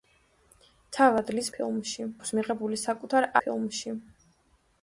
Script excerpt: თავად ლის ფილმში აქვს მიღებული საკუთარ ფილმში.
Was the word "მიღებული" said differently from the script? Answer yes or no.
no